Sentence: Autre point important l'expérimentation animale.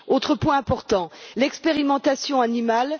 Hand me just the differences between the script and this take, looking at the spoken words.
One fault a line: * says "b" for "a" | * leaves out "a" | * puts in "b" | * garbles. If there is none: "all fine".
all fine